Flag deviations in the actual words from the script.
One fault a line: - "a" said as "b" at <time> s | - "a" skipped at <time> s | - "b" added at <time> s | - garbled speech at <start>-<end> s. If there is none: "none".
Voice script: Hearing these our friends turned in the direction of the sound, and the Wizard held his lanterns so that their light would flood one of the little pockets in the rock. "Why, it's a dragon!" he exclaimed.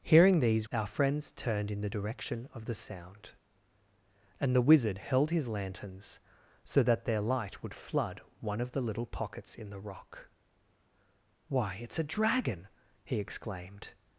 none